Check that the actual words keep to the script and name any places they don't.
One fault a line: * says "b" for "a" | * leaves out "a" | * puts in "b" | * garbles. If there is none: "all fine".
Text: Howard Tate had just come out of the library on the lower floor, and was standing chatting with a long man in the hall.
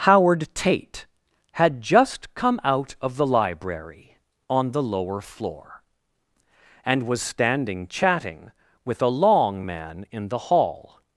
all fine